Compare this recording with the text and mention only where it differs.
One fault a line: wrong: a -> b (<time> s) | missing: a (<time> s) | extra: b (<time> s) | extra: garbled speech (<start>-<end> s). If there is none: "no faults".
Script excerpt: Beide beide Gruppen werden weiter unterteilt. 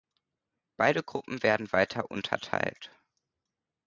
missing: beide (1.0 s)